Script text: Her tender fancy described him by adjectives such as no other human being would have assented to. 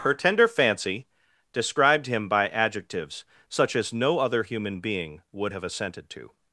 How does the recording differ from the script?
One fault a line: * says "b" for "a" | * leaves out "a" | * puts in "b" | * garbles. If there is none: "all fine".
all fine